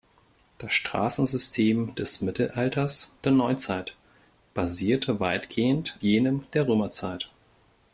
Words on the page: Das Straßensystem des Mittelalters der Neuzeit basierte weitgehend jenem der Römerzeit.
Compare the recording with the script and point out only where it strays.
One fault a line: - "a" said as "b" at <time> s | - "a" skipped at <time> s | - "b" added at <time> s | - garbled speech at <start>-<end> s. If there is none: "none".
none